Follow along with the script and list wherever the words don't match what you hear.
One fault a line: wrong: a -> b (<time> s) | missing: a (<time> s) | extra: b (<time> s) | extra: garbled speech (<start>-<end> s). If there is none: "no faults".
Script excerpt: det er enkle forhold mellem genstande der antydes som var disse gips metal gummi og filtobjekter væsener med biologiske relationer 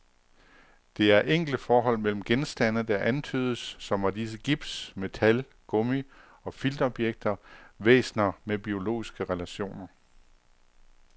no faults